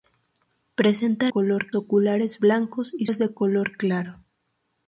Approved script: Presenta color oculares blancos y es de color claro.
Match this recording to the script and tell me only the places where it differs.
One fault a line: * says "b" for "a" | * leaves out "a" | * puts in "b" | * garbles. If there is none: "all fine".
all fine